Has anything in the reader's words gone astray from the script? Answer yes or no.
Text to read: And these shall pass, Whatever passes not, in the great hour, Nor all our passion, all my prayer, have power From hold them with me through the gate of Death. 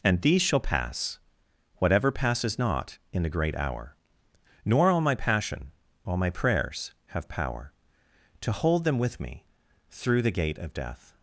yes